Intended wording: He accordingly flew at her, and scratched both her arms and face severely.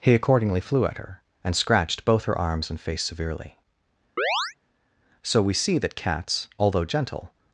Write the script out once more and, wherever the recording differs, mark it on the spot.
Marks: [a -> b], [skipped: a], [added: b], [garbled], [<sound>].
He accordingly flew at her, and scratched both her arms and face severely. [chirp] [added: So we see that cats although gentle]